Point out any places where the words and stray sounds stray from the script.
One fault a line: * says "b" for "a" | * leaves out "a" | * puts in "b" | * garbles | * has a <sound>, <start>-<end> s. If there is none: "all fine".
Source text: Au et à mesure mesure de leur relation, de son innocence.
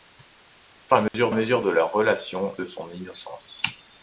* has a dropout, 1.1-1.1 s